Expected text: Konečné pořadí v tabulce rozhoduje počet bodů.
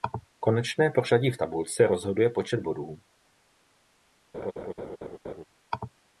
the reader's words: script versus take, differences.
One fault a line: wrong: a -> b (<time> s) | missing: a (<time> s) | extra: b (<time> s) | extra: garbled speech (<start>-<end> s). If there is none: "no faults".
no faults